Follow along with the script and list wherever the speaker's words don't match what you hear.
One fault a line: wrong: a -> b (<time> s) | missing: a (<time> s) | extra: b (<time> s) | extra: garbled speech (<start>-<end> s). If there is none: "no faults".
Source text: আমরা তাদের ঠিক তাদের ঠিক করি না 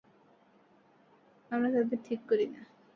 missing: তাদের ঠিক (2.2 s)